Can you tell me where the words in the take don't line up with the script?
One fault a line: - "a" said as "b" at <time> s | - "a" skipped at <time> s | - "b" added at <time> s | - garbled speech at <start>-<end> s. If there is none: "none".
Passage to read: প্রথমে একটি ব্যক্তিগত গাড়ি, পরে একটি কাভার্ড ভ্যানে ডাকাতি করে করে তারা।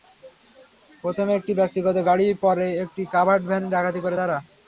- "করে" skipped at 4.2 s